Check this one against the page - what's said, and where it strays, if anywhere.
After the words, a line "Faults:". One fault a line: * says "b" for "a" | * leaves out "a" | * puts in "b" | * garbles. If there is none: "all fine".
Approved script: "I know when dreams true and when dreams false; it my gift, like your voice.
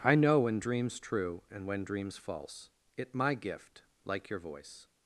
"I know when dreams true and when dreams false; it my gift, like your voice.
Faults:
all fine